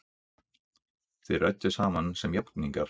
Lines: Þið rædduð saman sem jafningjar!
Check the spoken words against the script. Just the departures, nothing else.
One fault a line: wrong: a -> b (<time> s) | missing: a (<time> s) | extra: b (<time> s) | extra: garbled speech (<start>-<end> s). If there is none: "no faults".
no faults